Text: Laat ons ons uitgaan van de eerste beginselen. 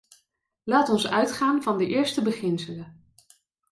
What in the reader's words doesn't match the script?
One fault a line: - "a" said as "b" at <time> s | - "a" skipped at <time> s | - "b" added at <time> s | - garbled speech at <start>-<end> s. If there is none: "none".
- "ons" skipped at 1.1 s